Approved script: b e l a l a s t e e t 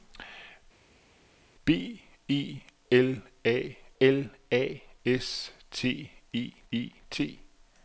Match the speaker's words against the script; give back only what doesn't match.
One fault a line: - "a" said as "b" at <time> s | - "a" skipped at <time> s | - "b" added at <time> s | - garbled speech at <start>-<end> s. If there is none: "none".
none